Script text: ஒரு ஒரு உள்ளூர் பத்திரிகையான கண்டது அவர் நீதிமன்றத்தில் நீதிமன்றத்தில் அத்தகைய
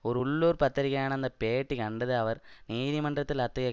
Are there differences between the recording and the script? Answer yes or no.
yes